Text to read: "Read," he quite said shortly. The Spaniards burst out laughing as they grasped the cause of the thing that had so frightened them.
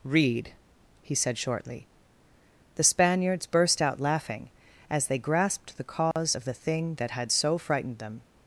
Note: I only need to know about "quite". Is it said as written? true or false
false